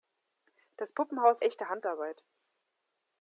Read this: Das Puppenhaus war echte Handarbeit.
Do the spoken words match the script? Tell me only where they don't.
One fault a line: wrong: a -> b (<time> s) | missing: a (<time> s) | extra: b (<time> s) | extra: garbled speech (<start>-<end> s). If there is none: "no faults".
missing: war (1.4 s)